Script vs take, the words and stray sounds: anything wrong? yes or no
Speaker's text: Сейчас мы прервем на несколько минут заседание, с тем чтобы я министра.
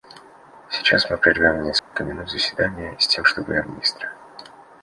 yes